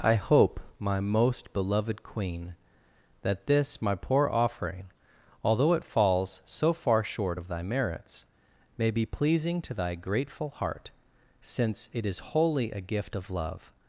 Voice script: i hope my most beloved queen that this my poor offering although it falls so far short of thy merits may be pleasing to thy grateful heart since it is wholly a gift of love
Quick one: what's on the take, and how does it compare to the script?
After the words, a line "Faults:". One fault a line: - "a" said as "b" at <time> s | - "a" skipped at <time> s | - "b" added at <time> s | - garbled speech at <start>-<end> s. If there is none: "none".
i hope my most beloved queen that this my poor offering although it falls so far short of thy merits may be pleasing to thy grateful heart since it is wholly a gift of love
Faults:
none